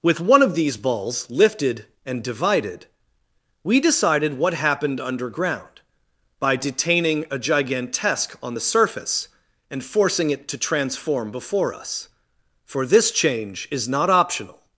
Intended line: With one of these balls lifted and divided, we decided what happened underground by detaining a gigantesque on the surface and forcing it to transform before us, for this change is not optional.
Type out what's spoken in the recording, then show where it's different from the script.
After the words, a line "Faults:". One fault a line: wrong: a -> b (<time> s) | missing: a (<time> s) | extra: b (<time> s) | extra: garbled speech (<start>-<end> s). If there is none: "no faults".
With one of these balls lifted and divided, we decided what happened underground by detaining a gigantesque on the surface and forcing it to transform before us, for this change is not optional.
Faults:
no faults